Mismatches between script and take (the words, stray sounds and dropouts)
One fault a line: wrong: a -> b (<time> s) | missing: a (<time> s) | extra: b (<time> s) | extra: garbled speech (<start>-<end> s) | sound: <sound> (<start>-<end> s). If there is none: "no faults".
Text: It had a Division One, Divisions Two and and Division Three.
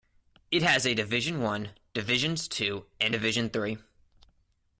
wrong: had -> has (0.6 s)
missing: and (3.1 s)